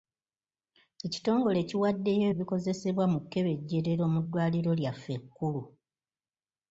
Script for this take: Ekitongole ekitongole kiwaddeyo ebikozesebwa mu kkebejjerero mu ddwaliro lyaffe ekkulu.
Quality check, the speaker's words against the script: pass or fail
fail